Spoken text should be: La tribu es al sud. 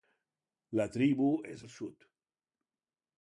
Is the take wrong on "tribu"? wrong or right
right